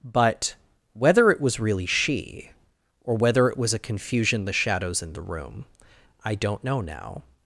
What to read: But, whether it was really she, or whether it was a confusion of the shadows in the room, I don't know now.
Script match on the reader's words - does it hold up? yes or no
no